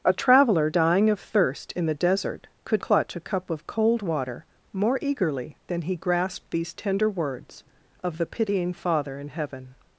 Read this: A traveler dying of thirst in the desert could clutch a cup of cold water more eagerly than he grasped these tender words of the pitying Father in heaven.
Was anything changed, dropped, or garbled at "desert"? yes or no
no